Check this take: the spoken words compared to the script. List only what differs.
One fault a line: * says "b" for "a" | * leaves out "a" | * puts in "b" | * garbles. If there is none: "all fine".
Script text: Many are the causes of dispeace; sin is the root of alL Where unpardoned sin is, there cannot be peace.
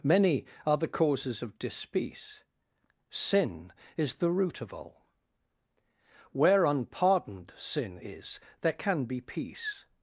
* says "can" for "cannot"